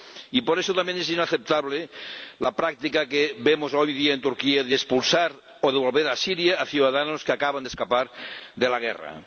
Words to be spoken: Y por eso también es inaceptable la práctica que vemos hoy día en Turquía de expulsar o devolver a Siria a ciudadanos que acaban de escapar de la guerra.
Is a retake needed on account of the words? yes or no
no